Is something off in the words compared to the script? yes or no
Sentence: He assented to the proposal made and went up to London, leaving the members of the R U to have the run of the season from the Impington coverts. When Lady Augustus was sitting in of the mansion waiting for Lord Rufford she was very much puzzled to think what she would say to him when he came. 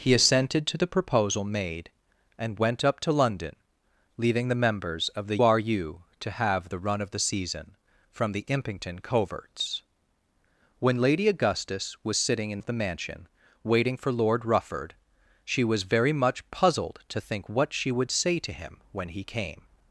no